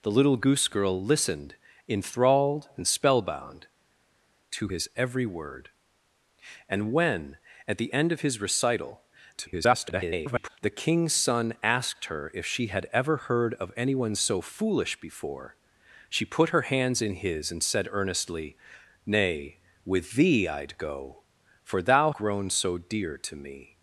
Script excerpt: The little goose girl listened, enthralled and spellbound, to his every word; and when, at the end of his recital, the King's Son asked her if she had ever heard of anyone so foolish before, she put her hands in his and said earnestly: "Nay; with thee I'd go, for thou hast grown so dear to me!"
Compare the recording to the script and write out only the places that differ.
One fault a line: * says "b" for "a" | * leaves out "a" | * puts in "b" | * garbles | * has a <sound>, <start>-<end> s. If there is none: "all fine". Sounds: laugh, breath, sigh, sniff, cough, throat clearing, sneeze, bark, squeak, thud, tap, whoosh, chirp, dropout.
* garbles
* leaves out "hast"